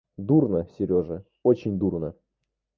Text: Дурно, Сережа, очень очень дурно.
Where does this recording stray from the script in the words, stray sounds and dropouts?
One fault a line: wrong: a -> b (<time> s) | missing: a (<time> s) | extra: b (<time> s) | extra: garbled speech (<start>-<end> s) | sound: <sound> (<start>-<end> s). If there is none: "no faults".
missing: очень (1.8 s)